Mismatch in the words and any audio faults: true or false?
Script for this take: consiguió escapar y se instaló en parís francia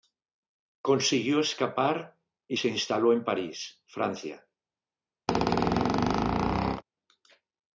true